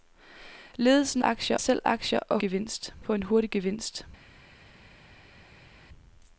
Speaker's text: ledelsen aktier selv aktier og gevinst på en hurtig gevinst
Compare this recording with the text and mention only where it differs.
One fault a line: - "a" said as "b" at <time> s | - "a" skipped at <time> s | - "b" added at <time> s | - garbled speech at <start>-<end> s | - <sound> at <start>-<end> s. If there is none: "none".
none